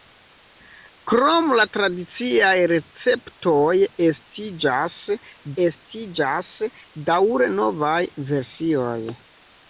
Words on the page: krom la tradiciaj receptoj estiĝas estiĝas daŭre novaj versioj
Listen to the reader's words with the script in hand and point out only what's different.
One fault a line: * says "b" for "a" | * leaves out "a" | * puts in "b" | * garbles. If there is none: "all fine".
all fine